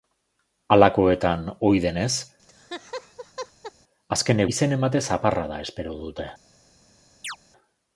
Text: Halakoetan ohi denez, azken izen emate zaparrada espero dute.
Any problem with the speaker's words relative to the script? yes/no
no